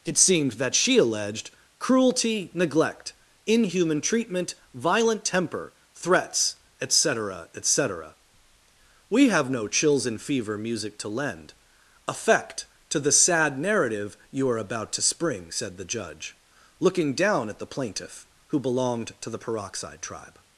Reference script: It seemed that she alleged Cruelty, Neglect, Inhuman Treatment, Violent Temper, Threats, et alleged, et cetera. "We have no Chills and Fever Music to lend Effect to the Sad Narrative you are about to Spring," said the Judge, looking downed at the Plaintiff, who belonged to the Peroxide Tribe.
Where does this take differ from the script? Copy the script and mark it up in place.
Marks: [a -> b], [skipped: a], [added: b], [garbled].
It seemed that she alleged Cruelty, Neglect, Inhuman Treatment, Violent Temper, Threats, et [alleged, -> cetera] et cetera. "We have no Chills and Fever Music to lend Effect to the Sad Narrative you are about to Spring," said the Judge, looking [downed -> down] at the Plaintiff, who belonged to the Peroxide Tribe.